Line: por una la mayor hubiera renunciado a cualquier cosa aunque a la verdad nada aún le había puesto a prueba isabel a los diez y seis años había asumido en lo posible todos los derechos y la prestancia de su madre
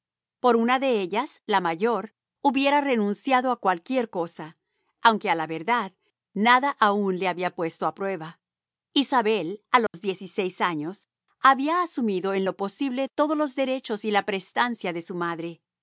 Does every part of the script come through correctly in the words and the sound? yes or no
no